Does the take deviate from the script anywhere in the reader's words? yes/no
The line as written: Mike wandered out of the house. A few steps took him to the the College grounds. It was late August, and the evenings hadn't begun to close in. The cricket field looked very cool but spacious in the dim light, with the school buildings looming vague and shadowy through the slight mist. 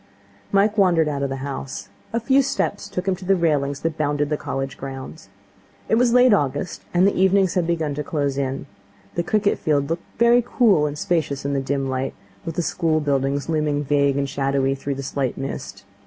yes